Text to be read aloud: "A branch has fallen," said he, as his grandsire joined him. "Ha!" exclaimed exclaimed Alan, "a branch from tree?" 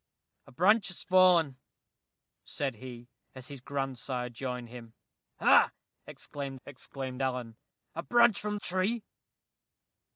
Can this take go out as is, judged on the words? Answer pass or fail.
pass